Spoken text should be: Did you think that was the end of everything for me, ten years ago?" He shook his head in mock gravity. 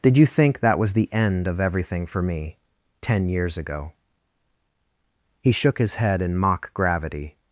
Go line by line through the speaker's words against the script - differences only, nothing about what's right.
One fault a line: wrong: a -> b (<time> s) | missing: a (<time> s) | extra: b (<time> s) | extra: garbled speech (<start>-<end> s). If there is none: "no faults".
no faults